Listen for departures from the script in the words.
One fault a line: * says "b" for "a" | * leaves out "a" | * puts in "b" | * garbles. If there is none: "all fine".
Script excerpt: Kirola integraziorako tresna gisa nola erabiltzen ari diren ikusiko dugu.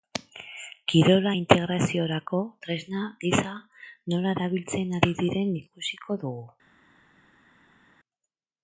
all fine